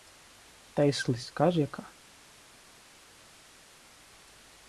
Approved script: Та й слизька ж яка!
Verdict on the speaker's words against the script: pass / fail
pass